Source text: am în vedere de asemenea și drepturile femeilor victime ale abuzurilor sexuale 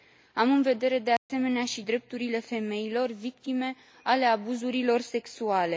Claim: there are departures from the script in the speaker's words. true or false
false